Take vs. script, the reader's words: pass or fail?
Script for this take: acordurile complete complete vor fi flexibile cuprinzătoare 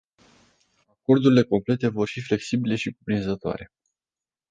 fail